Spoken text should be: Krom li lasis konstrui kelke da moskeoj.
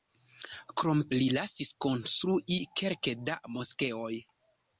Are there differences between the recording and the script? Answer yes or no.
no